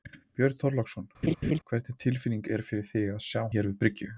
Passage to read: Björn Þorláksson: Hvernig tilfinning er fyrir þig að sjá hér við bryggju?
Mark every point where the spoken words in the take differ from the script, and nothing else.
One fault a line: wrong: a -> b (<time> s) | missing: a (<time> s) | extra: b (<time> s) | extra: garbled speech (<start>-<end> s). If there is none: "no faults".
no faults